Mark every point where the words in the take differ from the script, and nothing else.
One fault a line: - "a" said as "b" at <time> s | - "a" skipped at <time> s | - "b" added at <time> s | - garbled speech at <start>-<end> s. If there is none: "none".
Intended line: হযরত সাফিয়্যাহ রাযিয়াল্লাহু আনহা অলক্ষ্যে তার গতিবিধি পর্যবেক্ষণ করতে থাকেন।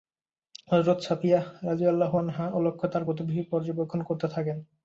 none